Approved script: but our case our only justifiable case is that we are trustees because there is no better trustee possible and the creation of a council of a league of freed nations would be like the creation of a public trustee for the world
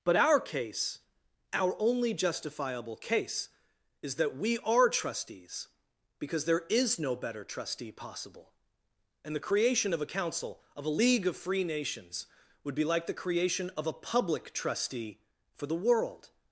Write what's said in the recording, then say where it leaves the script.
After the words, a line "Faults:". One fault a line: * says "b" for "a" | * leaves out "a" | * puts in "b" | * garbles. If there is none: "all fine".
but our case our only justifiable case is that we are trustees because there is no better trustee possible and the creation of a council of a league of free nations would be like the creation of a public trustee for the world
Faults:
* says "free" for "freed"